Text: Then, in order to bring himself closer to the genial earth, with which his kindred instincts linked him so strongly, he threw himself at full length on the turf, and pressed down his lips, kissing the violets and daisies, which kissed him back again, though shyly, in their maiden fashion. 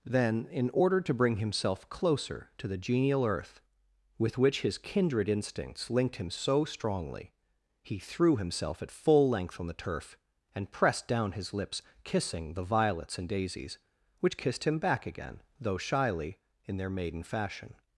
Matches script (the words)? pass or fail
pass